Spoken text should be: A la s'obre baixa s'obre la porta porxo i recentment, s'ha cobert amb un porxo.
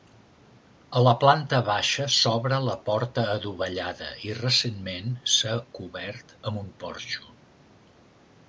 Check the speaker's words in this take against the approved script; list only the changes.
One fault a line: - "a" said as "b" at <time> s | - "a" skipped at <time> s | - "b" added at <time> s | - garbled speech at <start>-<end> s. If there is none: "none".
- "s'obre" said as "planta" at 1.2 s
- "porxo" said as "adovellada" at 3.4 s